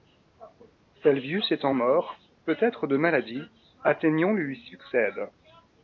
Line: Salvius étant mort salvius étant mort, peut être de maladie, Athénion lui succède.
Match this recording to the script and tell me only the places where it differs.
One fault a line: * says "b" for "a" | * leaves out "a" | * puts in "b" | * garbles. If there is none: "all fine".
* leaves out "salvius étant mort"